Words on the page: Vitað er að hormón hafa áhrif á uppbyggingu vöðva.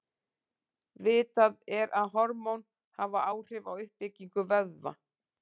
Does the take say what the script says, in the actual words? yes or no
yes